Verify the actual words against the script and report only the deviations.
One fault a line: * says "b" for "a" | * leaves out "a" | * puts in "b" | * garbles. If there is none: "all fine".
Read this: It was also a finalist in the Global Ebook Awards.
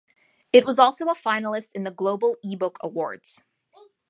all fine